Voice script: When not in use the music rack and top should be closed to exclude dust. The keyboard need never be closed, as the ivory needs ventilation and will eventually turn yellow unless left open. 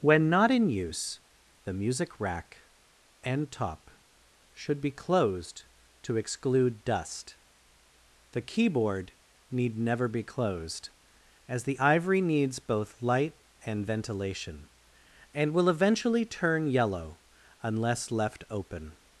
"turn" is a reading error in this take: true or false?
false